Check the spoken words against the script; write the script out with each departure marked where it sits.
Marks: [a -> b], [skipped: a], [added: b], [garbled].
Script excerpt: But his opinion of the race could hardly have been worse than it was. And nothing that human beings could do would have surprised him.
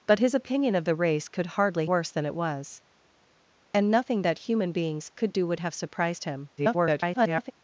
But his opinion of the race could hardly [skipped: have been] worse than it was. And nothing that human beings could do would have surprised him. [garbled]